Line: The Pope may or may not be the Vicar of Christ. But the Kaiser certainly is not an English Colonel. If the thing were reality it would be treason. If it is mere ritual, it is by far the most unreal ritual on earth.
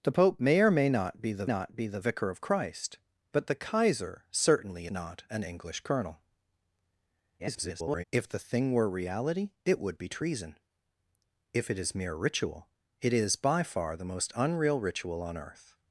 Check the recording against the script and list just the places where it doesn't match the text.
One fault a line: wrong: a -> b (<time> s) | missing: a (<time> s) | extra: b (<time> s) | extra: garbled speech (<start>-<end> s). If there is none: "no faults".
extra: not be the (1.4 s)
missing: is (4.9 s)
extra: garbled speech (7.4-8.0 s)